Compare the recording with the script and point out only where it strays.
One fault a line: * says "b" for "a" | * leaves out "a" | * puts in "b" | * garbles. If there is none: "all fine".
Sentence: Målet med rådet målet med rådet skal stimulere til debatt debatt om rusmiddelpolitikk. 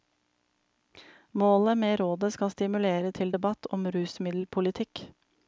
* leaves out "målet med rådet"
* leaves out "debatt"